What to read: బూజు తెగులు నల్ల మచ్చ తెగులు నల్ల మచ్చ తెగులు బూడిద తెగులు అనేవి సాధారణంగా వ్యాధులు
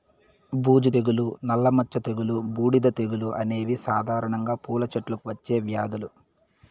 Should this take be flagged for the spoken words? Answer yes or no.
yes